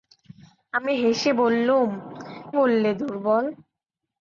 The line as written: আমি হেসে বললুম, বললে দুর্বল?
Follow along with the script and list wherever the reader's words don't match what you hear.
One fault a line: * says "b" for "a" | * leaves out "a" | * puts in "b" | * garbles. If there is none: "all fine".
all fine